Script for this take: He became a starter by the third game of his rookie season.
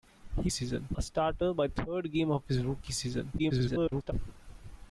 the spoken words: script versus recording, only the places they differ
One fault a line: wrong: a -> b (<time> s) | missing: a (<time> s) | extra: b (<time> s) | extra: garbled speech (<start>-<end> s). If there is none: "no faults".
wrong: became -> season (0.5 s)
missing: the (1.7 s)
extra: garbled speech (3.4-4.1 s)